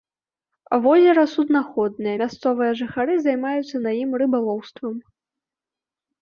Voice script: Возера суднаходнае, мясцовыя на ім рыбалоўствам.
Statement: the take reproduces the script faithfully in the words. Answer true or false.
false